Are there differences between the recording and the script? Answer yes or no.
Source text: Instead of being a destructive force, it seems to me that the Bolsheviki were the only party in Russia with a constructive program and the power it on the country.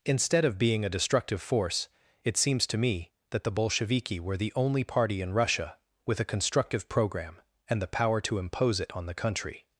yes